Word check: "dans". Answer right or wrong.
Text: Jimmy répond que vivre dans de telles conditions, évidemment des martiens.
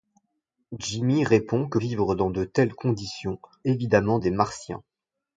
right